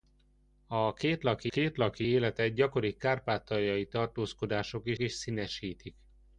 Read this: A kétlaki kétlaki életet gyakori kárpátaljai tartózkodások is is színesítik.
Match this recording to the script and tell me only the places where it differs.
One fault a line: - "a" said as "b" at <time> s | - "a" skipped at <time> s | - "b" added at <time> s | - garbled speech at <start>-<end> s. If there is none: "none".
none